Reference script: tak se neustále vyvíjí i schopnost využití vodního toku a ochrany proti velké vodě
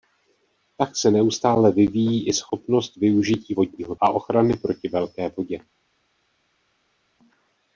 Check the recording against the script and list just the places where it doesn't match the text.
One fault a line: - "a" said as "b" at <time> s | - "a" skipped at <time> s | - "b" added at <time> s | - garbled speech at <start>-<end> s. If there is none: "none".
- "toku" skipped at 3.9 s